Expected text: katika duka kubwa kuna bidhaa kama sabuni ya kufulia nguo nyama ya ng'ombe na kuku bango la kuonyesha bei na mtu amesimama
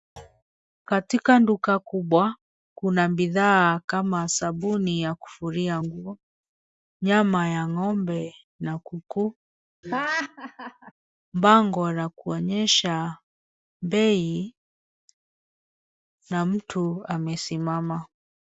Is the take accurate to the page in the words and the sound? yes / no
no